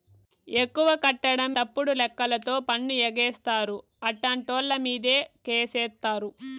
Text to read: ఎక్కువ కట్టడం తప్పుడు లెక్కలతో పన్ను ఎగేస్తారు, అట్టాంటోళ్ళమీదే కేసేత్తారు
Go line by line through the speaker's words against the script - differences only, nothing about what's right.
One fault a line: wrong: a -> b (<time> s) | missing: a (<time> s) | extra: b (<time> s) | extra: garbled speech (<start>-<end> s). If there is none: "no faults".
no faults